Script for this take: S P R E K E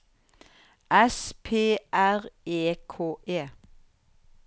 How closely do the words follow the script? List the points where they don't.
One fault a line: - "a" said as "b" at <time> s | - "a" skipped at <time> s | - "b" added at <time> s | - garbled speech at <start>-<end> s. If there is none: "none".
none